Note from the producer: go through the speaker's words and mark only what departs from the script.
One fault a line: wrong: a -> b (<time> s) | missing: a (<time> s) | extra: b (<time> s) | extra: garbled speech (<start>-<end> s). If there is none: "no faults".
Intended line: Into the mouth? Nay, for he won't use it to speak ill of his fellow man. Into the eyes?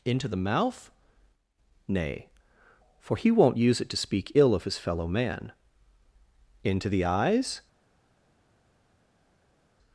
no faults